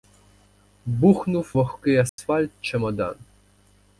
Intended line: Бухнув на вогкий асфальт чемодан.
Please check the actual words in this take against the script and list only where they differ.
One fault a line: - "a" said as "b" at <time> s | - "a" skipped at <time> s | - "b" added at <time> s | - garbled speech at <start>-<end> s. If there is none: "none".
- "на" skipped at 1.5 s